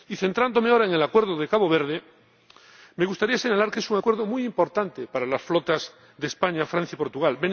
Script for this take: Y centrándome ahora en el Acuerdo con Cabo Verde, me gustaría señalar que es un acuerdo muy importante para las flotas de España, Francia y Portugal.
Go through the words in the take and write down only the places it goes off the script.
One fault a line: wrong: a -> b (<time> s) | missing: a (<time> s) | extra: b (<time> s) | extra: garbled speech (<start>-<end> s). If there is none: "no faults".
no faults